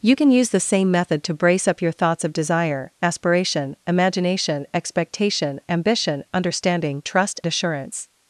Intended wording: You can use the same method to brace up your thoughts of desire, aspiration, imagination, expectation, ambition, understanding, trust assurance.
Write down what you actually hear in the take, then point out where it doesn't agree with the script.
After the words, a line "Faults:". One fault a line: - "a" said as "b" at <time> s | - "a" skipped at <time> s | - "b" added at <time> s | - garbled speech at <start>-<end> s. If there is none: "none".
You can use the same method to brace up your thoughts of desire, aspiration, imagination, expectation, ambition, understanding, trust assurance.
Faults:
none